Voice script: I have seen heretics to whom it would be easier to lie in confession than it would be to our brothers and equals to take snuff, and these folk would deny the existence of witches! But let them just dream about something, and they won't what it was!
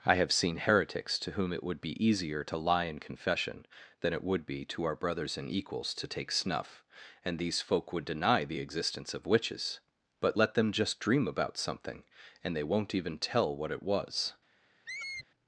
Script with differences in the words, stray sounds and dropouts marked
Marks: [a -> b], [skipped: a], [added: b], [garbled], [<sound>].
I have seen heretics to whom it would be easier to lie in confession than it would be to our brothers and equals to take snuff, and these folk would deny the existence of witches! But let them just dream about something, and they won't [added: even tell] what it was! [squeak]